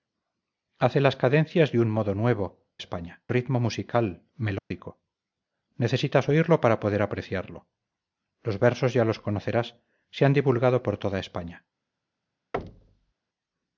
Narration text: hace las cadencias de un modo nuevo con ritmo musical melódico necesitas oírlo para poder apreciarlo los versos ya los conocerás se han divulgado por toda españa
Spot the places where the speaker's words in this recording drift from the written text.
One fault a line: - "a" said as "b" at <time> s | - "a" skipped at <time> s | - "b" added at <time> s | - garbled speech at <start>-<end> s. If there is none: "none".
- "con" said as "españa" at 2.8 s